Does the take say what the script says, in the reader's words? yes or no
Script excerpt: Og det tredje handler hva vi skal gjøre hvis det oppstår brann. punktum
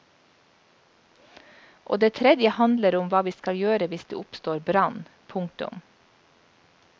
no